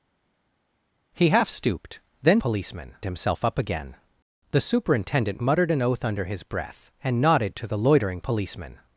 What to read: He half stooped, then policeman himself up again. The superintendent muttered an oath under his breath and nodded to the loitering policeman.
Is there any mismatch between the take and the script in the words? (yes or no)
no